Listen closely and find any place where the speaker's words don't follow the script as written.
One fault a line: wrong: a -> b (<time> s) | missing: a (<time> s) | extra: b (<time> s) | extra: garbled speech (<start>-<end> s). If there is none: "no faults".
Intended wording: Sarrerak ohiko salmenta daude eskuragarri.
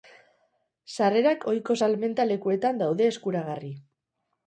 extra: lekuetan (2.3 s)